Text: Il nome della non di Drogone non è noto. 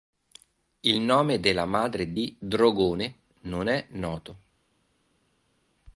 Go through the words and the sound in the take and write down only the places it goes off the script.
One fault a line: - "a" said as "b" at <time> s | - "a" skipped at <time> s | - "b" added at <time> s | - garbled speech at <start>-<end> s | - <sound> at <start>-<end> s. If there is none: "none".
- "non" said as "madre" at 1.6 s